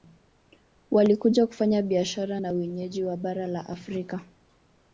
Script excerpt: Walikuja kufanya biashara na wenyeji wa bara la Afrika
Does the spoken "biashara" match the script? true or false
true